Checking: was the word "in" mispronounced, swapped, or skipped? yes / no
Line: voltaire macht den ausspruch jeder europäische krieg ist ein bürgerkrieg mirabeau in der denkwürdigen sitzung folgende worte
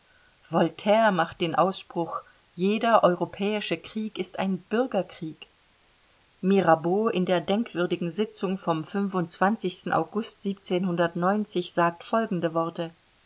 no